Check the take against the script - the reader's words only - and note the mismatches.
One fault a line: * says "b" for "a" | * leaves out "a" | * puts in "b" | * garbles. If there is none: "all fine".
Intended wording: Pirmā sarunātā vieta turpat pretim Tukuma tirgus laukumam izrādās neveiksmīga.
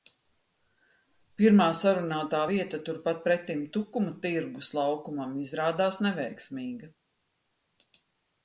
all fine